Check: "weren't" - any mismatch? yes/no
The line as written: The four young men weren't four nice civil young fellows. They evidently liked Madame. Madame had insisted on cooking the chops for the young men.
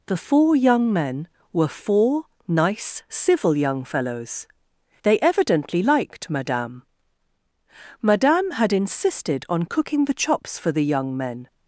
yes